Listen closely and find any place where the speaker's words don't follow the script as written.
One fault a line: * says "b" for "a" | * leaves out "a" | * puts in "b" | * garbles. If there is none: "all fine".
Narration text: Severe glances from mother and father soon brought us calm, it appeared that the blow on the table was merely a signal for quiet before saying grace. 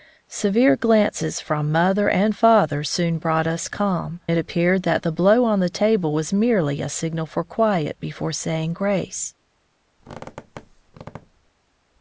all fine